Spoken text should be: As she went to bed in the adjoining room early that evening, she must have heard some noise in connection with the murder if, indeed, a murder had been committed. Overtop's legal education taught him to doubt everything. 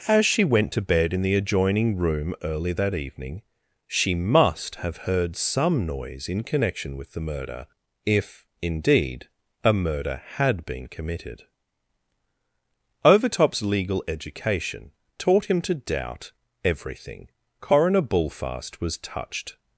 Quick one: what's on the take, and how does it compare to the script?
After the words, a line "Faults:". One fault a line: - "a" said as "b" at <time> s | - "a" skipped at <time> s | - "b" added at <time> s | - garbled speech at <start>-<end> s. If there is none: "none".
As she went to bed in the adjoining room early that evening, she must have heard some noise in connection with the murder if, indeed, a murder had been committed. Overtop's legal education taught him to doubt everything. Coroner Bullfast was touched
Faults:
- "Coroner Bullfast was touched" added at 17.6 s